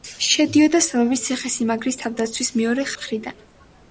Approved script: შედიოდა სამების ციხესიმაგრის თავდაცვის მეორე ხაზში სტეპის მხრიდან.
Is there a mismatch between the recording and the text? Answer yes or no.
yes